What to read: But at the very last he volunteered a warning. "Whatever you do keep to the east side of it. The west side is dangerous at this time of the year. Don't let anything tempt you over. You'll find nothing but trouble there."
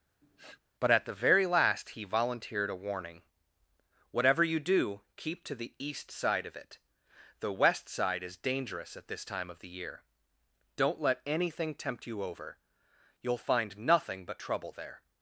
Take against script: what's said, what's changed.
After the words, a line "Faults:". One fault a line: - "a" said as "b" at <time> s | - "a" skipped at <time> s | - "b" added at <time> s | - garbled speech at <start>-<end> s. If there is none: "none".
But at the very last he volunteered a warning. "Whatever you do keep to the east side of it. The west side is dangerous at this time of the year. Don't let anything tempt you over. You'll find nothing but trouble there."
Faults:
none